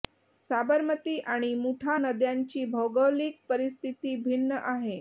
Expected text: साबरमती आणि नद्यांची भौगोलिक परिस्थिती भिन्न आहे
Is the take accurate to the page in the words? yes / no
no